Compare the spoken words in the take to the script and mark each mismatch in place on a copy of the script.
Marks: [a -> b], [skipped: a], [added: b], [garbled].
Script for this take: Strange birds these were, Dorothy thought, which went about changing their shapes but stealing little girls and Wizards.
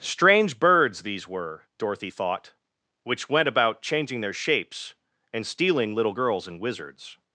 Strange birds these were, Dorothy thought, which went about changing their shapes [but -> and] stealing little girls and Wizards.